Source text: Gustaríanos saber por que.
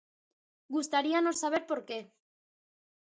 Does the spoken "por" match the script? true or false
true